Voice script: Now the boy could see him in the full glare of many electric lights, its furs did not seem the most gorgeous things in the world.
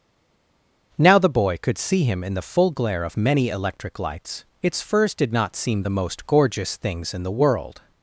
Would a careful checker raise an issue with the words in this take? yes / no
no